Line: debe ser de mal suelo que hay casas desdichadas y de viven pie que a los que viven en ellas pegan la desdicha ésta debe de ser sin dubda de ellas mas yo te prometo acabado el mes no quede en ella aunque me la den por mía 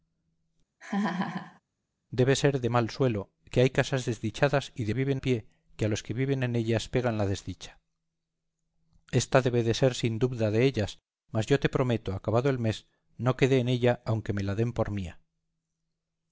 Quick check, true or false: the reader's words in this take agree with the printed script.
true